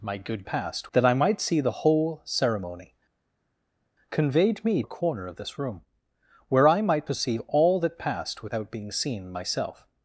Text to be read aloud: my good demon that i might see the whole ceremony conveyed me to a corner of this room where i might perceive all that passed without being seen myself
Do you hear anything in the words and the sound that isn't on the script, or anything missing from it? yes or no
yes